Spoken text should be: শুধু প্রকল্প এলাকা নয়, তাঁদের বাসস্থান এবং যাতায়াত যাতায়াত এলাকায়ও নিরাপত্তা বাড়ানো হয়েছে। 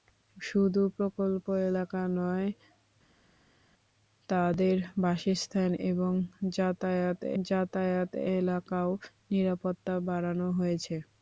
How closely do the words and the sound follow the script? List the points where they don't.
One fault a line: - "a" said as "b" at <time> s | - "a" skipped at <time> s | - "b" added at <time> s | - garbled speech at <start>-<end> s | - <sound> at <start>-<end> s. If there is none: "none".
none